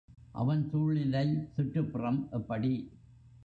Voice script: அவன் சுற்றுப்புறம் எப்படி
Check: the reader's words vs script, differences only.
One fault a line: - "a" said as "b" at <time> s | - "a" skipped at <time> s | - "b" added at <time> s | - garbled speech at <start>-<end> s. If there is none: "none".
- "சூழ்நிலை" added at 0.7 s